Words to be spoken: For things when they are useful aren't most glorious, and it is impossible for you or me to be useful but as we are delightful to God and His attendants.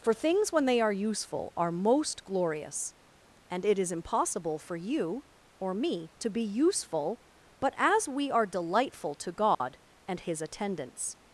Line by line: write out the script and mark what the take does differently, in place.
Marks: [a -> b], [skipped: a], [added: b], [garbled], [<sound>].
For things when they are useful [aren't -> are] most glorious, and it is impossible for you or me to be useful but as we are delightful to God [dropout] and His attendants.